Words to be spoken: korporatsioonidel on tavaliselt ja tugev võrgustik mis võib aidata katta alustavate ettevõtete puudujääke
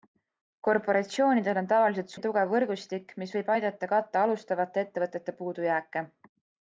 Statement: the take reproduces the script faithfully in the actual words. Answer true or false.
true